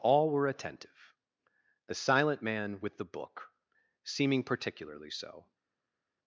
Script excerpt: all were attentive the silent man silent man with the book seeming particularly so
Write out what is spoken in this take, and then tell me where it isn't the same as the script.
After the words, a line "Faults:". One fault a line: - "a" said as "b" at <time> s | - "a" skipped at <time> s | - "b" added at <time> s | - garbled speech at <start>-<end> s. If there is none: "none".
all were attentive the silent man with the book seeming particularly so
Faults:
- "silent man" skipped at 2.8 s